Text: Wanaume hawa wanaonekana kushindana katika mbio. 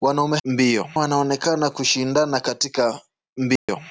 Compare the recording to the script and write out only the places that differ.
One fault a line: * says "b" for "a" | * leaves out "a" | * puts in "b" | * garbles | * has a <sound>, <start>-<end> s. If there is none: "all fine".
* says "mbio" for "hawa"
* has a dropout, 3.6-3.7 s